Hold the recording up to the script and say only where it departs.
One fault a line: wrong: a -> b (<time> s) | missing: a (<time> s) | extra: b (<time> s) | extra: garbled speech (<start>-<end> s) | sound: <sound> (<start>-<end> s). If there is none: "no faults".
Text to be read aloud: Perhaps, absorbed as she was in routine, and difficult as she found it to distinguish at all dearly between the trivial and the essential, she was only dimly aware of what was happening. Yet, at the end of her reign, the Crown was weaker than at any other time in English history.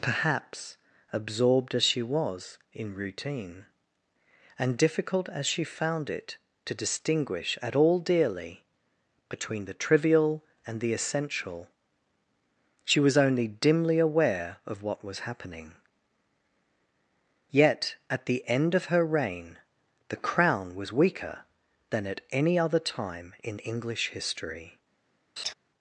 sound: laugh (25.4-25.5 s)